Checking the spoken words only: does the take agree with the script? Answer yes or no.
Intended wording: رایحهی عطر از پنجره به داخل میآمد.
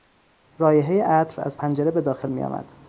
yes